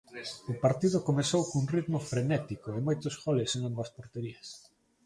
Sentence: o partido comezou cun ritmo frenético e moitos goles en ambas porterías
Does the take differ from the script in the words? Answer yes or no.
no